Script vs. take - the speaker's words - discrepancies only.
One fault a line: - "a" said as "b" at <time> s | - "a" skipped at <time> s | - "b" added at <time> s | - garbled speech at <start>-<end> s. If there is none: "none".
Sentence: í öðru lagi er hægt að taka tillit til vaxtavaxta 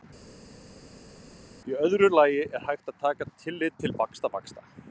none